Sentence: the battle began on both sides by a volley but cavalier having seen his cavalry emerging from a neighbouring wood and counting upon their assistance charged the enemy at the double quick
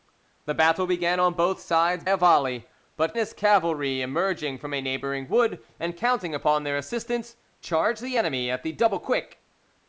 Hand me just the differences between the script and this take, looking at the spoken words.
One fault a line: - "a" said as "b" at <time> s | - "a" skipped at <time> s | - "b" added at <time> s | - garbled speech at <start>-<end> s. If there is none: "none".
- "by" skipped at 2.0 s
- "cavalier having seen" skipped at 3.1 s